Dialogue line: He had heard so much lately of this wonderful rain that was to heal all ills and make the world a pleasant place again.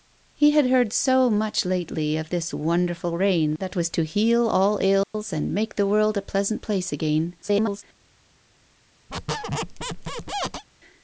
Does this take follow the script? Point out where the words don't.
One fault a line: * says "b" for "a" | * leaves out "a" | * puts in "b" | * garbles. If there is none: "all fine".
* garbles